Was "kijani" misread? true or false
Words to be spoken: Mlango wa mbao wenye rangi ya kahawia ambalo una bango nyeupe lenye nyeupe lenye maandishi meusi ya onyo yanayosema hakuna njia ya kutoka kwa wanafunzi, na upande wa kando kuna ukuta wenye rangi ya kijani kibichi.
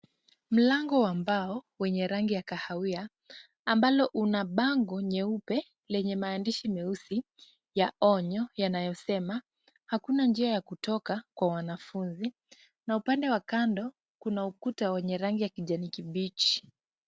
false